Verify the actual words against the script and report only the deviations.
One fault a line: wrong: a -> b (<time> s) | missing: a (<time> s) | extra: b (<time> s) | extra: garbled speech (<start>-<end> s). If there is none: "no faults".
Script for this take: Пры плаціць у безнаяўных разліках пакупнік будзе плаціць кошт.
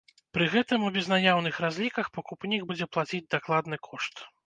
wrong: плаціць -> гэтым (0.5 s)
extra: дакладны (3.4 s)